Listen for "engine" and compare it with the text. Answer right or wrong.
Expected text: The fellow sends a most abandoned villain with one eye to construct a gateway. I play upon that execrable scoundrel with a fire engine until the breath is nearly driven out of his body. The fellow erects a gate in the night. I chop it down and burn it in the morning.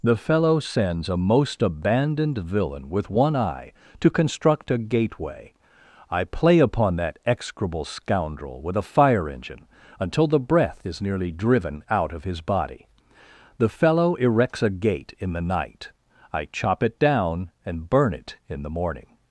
right